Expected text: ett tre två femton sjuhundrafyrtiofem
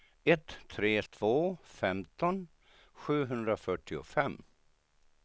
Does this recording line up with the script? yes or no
yes